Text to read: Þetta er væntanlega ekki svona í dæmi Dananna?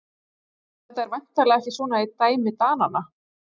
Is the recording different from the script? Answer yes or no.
no